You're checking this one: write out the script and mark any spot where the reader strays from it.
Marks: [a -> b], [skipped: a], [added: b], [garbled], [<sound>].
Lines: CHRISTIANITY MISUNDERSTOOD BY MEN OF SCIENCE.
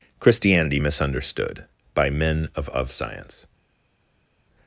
CHRISTIANITY MISUNDERSTOOD BY MEN OF [added: OF] SCIENCE.